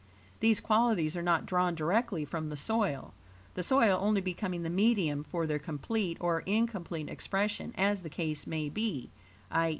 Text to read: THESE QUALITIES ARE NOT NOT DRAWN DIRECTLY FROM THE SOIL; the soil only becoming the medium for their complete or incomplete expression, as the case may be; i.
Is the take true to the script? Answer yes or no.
no